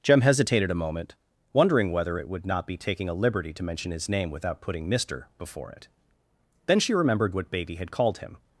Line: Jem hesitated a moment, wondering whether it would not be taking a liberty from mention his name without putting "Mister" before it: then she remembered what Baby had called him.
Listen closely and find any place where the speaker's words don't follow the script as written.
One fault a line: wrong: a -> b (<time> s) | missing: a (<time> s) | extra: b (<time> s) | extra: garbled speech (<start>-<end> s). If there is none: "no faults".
wrong: from -> to (3.5 s)